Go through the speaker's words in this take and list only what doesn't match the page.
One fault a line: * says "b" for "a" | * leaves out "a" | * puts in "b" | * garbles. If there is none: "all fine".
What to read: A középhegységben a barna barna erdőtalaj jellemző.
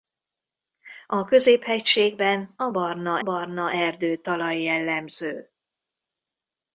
all fine